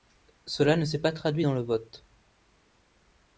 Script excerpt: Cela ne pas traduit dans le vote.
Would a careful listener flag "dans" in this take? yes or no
no